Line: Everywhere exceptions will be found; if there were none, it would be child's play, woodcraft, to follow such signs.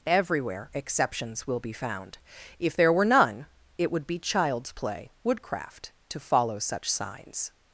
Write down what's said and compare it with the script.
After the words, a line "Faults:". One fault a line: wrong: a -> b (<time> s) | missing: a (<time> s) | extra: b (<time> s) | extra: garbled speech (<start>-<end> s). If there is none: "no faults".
Everywhere exceptions will be found; if there were none, it would be child's play, woodcraft, to follow such signs.
Faults:
no faults